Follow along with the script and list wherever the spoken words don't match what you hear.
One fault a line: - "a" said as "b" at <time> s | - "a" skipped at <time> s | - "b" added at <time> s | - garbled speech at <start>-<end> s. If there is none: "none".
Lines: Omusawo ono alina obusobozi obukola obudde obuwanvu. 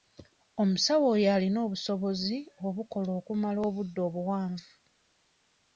- "ono" said as "oyo" at 1.1 s
- "okumala" added at 3.2 s